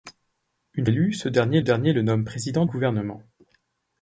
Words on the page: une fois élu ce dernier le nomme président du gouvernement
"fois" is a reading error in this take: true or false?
true